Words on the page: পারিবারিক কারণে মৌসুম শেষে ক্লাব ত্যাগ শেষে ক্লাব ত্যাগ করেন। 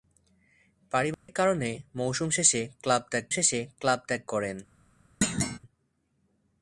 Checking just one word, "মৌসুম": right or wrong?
right